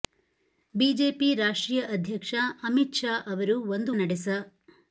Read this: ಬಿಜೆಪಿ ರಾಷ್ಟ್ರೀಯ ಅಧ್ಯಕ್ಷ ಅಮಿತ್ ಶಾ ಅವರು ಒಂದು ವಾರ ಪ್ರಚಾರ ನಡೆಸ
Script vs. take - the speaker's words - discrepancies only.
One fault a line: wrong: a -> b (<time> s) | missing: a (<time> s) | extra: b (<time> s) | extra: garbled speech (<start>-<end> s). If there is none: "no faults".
missing: ವಾರ ಪ್ರಚಾರ (3.9 s)